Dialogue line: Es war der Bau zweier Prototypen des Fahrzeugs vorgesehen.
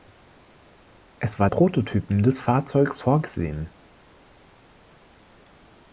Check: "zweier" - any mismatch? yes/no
yes